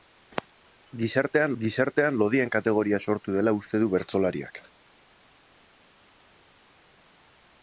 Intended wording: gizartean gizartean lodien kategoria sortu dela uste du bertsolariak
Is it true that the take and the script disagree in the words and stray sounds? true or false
false